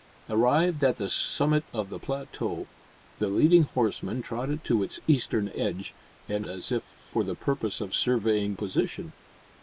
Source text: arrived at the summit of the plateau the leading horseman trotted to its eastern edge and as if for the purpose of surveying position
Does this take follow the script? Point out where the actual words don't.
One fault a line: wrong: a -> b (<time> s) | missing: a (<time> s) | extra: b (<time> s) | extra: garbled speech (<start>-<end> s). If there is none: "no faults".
no faults